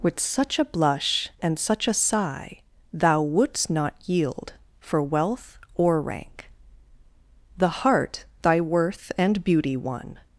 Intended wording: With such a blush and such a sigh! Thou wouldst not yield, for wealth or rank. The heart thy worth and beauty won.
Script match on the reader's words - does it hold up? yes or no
yes